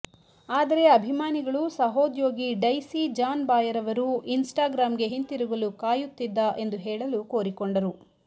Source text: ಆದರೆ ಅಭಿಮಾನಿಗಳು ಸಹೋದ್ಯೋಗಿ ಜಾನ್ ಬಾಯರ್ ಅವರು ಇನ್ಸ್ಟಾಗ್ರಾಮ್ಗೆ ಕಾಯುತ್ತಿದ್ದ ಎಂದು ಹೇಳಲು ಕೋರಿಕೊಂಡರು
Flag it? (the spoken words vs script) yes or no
yes